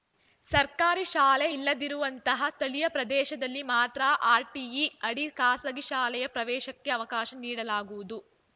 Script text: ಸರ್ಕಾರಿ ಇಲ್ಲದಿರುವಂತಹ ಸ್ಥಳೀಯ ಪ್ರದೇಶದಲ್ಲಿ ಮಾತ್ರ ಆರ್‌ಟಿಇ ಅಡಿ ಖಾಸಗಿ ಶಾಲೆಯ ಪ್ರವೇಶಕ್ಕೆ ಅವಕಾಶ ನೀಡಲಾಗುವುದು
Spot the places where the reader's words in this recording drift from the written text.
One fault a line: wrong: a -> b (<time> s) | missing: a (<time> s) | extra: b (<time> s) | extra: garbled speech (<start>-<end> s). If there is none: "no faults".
extra: ಶಾಲೆ (1.1 s)